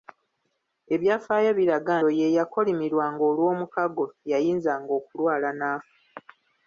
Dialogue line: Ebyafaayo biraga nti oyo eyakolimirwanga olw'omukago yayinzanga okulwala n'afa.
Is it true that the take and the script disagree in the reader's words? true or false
true